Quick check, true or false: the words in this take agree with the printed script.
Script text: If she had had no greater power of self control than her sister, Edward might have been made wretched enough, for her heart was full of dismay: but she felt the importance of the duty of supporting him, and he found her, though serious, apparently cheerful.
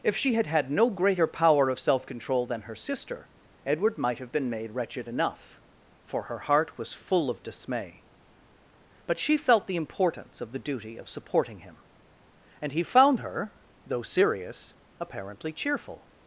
true